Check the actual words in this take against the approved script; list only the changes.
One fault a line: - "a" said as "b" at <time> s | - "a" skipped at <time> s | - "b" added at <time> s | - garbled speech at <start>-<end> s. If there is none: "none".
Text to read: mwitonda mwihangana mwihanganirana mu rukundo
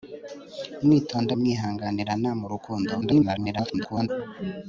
- "mwihangana" skipped at 1.3 s
- garbled speech at 3.0-4.1 s